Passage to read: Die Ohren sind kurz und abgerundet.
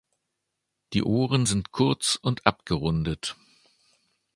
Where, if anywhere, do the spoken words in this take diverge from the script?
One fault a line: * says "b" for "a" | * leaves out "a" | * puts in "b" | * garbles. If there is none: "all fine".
all fine